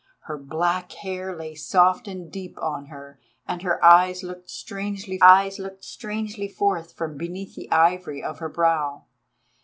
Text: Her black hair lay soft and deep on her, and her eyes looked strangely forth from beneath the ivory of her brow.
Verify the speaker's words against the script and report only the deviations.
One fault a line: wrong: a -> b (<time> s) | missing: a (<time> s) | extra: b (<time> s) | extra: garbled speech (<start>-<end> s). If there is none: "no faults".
extra: eyes looked strangely (5.2 s)